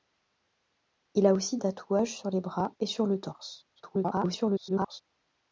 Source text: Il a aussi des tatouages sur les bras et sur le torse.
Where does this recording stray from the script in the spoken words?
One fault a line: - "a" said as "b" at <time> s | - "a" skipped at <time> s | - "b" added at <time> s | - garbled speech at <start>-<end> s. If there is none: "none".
- "des" skipped at 1.6 s
- garbled speech at 3.8-5.0 s